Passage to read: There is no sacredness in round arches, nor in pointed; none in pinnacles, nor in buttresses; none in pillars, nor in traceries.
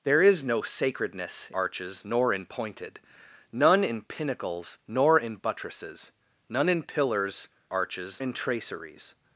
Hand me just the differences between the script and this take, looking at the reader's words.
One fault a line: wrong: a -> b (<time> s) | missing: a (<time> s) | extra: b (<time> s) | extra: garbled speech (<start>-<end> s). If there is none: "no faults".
missing: in round (1.5 s)
wrong: nor -> arches (7.7 s)